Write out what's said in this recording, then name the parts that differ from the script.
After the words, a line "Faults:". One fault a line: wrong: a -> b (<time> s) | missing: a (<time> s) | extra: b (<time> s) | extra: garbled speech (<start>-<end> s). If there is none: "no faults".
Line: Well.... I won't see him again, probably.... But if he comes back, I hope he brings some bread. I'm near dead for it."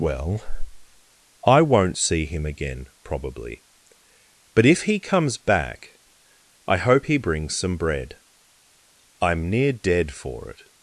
Well.... I won't see him again, probably.... But if he comes back, I hope he brings some bread. I'm near dead for it."
Faults:
no faults